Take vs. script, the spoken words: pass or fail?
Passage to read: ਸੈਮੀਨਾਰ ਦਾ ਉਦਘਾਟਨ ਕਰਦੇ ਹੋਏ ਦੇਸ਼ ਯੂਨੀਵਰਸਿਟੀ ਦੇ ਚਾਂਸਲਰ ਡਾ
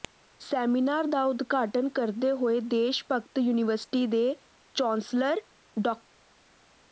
fail